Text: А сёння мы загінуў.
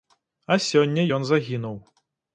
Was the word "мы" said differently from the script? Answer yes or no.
yes